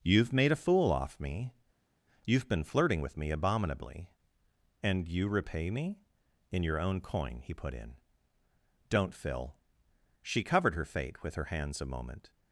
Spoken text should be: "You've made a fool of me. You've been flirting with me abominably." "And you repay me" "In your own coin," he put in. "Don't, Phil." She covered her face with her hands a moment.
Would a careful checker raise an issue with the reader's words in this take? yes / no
yes